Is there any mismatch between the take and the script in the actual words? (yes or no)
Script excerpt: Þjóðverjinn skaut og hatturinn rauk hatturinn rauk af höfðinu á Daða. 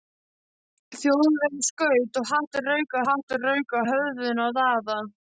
no